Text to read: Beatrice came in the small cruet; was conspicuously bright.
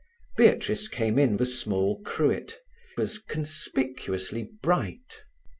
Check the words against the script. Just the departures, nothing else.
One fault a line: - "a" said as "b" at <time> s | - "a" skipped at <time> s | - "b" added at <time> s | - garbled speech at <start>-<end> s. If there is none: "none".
none